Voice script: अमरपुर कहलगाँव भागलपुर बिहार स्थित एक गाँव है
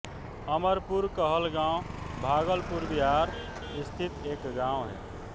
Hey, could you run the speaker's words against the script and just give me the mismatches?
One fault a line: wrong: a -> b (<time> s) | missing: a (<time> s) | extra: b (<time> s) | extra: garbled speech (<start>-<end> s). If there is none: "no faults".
no faults